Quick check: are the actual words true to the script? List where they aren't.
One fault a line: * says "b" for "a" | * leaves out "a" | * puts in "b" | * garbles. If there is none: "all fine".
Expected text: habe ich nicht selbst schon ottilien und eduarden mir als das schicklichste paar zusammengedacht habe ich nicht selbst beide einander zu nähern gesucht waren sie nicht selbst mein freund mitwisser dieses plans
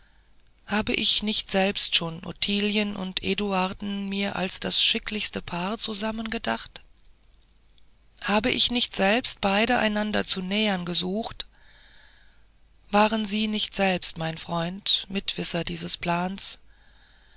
all fine